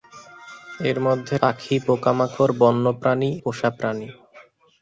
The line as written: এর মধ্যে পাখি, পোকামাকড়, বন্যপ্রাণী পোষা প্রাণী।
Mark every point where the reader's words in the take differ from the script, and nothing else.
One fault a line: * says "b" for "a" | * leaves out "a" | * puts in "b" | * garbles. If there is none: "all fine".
all fine